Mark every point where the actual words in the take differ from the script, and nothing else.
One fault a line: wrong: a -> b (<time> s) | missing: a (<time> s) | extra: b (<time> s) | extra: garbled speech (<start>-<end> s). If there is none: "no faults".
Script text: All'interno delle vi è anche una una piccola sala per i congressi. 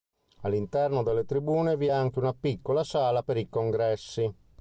extra: tribune (1.2 s)
missing: una (2.3 s)